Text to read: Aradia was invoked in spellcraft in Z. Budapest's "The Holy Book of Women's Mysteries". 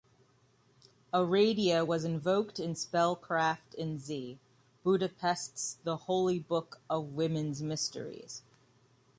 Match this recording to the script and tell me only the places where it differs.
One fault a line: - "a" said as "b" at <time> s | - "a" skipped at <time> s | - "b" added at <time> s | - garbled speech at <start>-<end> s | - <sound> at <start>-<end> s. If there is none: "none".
none